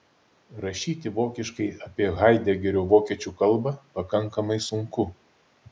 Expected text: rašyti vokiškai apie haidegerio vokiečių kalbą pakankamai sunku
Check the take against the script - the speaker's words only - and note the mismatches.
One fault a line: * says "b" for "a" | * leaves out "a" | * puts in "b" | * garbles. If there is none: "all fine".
all fine